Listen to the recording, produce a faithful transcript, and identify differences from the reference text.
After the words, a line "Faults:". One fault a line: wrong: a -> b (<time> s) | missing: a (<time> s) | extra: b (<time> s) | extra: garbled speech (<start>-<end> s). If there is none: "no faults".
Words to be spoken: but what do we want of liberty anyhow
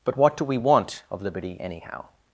but what do we want of liberty anyhow
Faults:
no faults